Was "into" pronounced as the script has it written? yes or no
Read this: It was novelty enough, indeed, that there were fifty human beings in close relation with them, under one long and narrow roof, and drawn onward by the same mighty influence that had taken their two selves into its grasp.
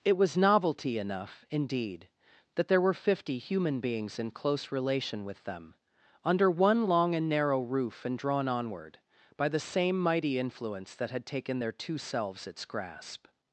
no